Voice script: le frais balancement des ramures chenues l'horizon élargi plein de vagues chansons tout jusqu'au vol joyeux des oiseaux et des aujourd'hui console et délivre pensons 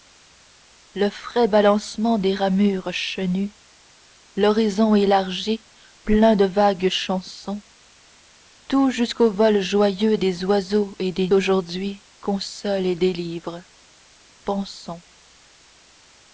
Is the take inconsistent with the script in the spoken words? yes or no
no